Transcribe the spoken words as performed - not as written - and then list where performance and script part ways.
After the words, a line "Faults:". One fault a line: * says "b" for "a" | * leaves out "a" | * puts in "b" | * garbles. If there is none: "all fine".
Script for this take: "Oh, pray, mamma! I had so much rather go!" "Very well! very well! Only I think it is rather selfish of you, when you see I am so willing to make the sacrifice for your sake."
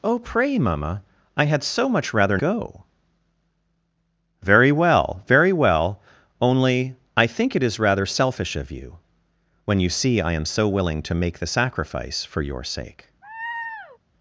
"Oh, pray, mamma! I had so much rather go!" "Very well! very well! Only I think it is rather selfish of you, when you see I am so willing to make the sacrifice for your sake."
Faults:
all fine